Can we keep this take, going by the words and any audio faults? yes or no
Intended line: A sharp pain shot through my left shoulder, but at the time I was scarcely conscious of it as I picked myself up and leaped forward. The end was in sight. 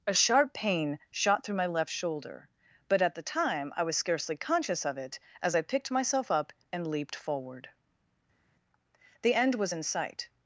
yes